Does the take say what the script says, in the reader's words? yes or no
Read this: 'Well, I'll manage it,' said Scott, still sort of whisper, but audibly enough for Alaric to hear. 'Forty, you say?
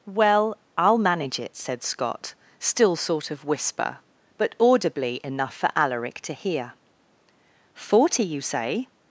yes